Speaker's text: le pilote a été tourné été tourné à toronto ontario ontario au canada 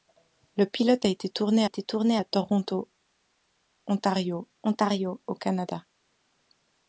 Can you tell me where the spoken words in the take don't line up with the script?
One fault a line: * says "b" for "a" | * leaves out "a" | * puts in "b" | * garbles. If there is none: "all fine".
all fine